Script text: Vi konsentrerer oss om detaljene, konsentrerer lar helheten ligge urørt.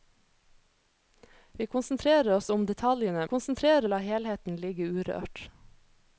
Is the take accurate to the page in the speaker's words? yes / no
yes